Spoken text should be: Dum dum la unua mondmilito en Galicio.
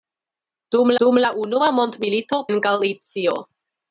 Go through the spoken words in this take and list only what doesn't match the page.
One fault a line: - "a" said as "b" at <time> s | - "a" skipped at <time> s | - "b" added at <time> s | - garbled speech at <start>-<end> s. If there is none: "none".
none